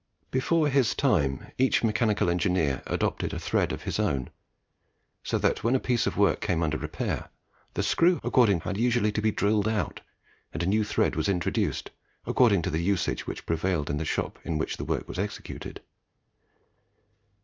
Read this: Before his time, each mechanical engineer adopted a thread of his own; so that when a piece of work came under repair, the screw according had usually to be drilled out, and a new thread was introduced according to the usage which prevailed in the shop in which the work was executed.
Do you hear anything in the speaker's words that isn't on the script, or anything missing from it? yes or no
no